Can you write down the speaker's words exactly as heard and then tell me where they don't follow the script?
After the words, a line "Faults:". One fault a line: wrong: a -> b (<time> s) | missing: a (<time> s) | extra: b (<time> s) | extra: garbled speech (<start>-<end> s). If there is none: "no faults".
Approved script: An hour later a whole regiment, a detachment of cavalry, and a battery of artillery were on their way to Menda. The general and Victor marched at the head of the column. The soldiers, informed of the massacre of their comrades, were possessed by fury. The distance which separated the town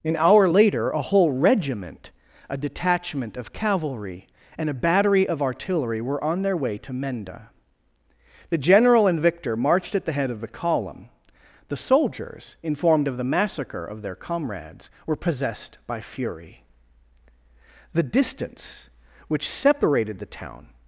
An hour later a whole regiment, a detachment of cavalry, and a battery of artillery were on their way to Menda. The general and Victor marched at the head of the column. The soldiers, informed of the massacre of their comrades, were possessed by fury. The distance which separated the town
Faults:
no faults